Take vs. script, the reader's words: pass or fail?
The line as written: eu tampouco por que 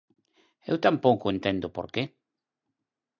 fail